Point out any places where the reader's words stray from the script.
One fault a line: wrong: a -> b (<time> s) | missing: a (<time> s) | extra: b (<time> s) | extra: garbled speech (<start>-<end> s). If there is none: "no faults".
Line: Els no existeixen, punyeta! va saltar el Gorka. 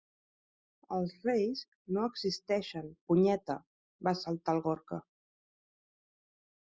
extra: reis (1.2 s)